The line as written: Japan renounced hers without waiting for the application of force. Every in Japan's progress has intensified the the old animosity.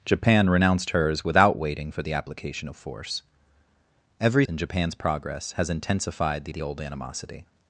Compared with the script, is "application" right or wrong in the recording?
right